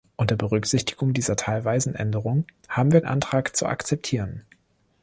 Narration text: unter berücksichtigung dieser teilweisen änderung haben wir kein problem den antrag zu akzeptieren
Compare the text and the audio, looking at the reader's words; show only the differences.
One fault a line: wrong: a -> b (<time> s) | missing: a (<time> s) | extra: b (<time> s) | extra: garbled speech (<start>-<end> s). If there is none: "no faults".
missing: kein problem den (3.0 s)